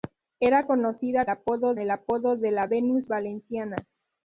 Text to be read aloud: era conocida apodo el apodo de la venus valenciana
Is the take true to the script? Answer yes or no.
yes